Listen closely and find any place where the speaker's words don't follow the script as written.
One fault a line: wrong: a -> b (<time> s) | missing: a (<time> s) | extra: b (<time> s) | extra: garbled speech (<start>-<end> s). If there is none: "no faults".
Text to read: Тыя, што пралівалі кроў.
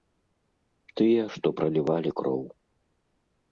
no faults